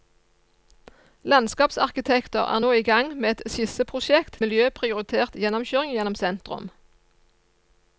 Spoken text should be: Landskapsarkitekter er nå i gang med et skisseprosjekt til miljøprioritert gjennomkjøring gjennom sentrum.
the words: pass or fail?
fail